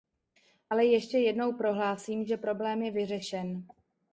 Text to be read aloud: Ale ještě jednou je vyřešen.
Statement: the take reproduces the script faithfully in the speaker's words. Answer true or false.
false